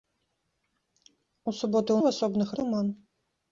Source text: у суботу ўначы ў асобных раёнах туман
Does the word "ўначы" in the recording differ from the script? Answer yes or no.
yes